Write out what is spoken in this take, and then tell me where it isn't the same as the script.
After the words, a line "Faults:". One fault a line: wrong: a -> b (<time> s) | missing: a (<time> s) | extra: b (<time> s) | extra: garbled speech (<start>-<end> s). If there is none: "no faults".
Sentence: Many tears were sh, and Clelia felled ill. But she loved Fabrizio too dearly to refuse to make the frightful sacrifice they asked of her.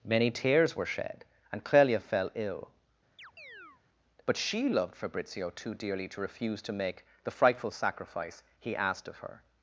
Many tears were shed, and Clelia fell ill. But she loved Fabrizio too dearly to refuse to make the frightful sacrifice he asked of her.
Faults:
wrong: sh -> shed (0.8 s)
wrong: felled -> fell (2.0 s)
wrong: they -> he (8.6 s)